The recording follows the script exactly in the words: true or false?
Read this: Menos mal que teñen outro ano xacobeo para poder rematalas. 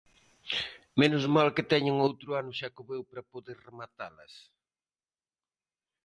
true